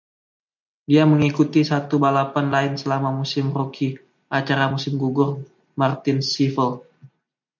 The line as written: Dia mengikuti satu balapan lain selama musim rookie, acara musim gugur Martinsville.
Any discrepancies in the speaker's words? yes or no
no